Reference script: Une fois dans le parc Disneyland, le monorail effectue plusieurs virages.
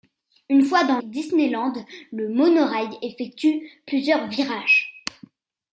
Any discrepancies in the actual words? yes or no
yes